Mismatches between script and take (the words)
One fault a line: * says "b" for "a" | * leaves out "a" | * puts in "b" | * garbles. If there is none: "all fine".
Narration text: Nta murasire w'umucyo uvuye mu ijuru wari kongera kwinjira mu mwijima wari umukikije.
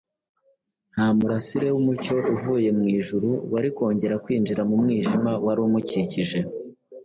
all fine